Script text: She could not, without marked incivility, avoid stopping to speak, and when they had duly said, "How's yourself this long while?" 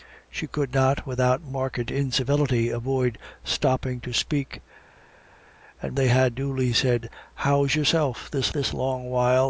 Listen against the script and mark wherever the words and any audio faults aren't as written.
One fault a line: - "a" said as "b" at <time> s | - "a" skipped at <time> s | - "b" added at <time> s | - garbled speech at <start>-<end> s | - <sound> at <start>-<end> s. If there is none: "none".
- "when" skipped at 6.0 s
- "this" added at 8.5 s